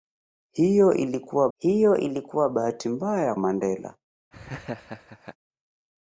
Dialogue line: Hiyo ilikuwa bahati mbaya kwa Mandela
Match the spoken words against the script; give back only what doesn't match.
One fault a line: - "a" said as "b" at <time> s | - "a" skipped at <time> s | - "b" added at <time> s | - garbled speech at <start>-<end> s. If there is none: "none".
- "hiyo ilikuwa" added at 1.6 s
- "kwa" skipped at 3.3 s